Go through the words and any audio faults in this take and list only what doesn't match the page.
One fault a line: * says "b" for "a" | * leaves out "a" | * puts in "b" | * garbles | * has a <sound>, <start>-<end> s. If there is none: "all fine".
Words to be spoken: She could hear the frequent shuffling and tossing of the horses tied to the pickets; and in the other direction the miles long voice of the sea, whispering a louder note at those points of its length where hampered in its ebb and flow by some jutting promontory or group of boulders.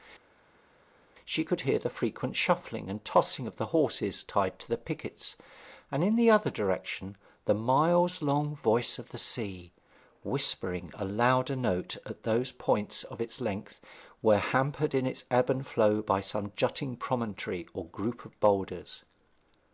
all fine